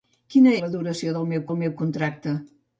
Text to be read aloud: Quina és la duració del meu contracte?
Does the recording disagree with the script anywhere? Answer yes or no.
yes